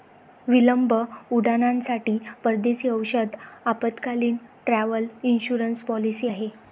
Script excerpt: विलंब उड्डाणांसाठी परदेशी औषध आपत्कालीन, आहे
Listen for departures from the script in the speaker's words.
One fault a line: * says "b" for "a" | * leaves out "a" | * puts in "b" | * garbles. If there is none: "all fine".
* puts in "ट्रॅव्हल इन्शुरन्स पॉलिसी"